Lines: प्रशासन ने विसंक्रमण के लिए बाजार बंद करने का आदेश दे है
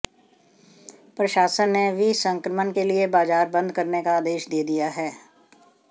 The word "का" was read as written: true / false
true